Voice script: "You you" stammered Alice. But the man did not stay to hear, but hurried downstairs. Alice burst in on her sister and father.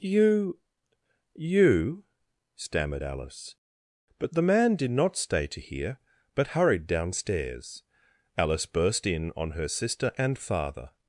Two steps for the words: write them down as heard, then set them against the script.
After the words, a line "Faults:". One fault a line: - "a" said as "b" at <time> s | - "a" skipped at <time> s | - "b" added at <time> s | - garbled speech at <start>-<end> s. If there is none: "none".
"You you" stammered Alice. But the man did not stay to hear, but hurried downstairs. Alice burst in on her sister and father.
Faults:
none